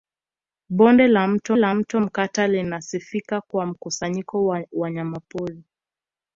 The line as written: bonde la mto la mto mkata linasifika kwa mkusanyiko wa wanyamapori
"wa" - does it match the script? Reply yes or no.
yes